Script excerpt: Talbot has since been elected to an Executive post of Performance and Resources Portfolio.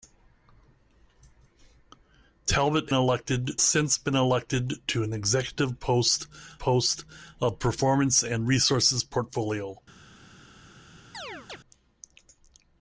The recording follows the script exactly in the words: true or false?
false